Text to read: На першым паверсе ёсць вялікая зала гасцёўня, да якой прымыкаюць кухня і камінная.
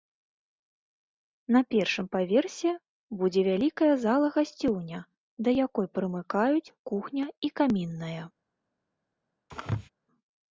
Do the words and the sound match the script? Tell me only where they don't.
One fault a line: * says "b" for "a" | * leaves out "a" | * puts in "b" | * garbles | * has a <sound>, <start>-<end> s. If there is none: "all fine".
* says "будзе" for "ёсць"
* has a sneeze, 9.5-9.9 s